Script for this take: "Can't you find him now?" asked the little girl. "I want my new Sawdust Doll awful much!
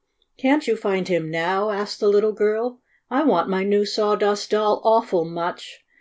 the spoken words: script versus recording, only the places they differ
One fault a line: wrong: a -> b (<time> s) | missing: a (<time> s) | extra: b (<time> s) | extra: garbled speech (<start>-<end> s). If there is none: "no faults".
no faults